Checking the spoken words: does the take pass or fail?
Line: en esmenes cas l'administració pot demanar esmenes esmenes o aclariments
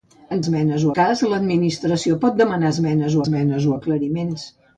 pass